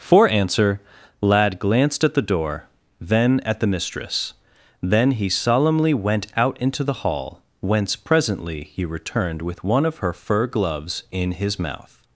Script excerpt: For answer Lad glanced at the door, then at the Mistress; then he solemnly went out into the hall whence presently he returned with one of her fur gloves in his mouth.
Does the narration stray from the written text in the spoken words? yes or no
no